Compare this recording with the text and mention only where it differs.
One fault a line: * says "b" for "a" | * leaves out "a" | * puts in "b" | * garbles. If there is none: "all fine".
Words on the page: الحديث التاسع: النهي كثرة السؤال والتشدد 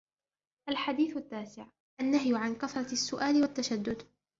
* puts in "عن"